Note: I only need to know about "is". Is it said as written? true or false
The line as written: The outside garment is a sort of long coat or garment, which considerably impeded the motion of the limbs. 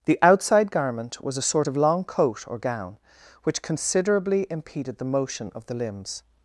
false